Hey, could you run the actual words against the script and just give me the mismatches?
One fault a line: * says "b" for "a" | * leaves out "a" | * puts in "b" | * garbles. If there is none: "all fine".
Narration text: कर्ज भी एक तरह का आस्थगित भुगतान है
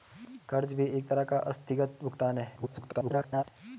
* garbles